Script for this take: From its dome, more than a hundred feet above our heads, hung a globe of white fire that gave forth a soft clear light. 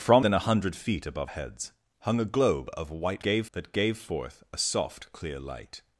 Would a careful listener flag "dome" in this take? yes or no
yes